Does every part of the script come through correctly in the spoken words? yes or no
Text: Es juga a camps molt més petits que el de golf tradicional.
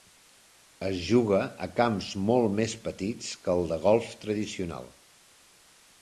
yes